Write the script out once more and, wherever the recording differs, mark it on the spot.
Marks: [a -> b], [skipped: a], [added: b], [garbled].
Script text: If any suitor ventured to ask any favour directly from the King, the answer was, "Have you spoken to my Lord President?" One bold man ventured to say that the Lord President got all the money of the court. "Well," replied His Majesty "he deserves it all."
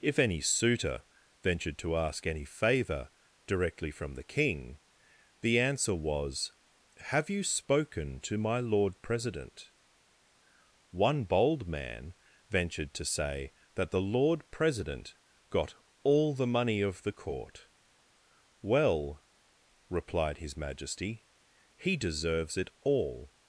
If any suitor ventured to ask any favour directly from the King, the answer was, "Have you spoken to my Lord President?" One bold man ventured to say that the Lord President got all the money of the court. "Well," replied His Majesty "he deserves it all."